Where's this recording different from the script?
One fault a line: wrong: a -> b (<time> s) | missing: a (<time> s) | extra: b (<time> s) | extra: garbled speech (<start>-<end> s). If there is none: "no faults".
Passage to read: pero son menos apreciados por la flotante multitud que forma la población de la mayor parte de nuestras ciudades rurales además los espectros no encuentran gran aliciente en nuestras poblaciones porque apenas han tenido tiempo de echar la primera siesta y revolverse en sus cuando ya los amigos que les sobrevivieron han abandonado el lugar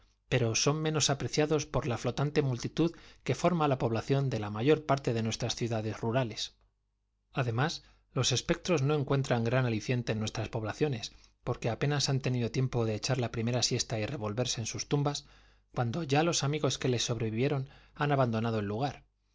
extra: tumbas (14.9 s)